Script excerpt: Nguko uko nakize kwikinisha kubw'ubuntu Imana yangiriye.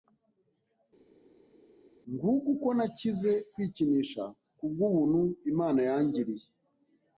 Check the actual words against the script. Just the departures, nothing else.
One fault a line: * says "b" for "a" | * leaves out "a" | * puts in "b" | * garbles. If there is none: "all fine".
all fine